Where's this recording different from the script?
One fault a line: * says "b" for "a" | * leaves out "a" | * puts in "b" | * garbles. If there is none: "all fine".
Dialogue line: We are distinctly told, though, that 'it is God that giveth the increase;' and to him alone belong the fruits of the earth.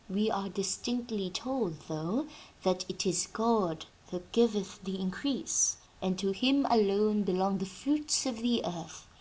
all fine